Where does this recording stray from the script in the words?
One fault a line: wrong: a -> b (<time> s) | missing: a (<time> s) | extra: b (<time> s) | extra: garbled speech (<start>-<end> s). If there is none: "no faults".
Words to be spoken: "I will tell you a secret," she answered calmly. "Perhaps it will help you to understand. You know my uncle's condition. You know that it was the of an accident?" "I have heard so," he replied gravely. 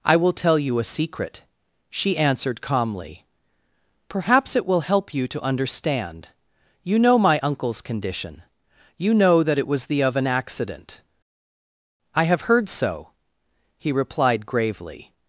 no faults